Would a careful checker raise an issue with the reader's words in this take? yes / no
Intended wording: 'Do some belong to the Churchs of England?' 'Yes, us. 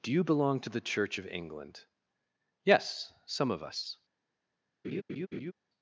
yes